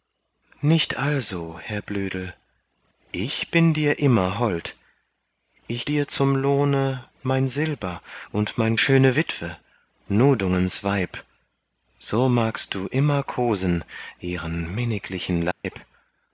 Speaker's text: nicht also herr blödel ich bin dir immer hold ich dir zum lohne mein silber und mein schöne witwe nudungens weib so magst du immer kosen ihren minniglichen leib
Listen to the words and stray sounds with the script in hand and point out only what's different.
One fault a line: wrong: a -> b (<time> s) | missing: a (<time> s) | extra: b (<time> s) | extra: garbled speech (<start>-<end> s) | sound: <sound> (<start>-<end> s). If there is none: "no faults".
sound: dropout (15.5-15.6 s)